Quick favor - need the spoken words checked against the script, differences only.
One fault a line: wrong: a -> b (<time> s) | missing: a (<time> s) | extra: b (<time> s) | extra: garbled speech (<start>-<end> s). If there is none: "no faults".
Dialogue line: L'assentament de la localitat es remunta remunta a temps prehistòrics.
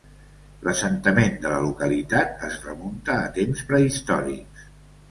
missing: remunta (3.2 s)